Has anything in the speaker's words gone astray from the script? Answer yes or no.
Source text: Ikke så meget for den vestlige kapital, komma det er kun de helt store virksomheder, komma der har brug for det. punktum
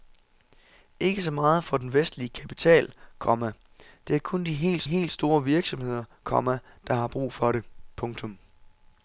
yes